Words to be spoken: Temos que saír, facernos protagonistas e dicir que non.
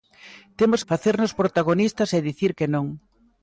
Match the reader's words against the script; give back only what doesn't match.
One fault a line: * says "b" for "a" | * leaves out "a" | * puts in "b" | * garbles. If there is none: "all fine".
* leaves out "que saír"